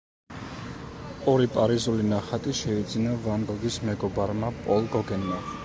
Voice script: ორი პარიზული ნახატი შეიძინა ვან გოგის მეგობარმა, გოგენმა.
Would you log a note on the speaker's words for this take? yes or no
yes